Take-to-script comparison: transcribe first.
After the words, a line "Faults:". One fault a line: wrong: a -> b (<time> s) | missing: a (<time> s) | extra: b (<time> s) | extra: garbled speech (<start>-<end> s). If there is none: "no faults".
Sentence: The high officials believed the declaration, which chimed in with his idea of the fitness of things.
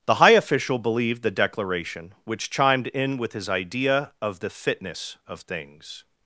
The high official believed the declaration, which chimed in with his idea of the fitness of things.
Faults:
wrong: officials -> official (0.3 s)